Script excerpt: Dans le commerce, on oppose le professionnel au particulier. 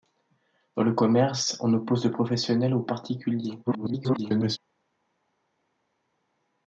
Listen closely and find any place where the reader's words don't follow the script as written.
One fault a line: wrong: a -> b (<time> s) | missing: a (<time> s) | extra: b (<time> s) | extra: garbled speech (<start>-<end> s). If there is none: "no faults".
extra: garbled speech (3.7-4.6 s)